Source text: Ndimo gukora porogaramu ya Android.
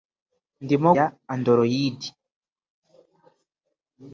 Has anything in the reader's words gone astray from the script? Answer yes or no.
yes